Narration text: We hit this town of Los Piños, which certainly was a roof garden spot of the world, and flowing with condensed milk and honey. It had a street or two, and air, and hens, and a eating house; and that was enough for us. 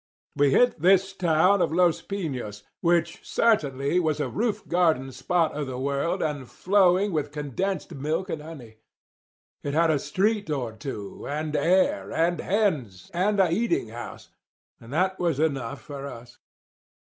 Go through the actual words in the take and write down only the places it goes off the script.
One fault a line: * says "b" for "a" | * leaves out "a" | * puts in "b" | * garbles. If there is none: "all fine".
all fine